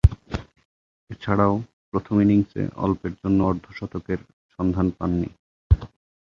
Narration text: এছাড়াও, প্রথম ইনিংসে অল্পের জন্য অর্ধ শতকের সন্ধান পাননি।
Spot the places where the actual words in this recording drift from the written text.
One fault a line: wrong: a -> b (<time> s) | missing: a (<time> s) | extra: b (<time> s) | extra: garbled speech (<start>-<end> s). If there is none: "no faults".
no faults